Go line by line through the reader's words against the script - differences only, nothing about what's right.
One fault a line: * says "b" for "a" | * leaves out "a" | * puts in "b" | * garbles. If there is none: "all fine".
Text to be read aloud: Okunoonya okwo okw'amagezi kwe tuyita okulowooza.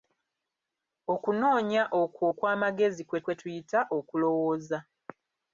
* puts in "kwe"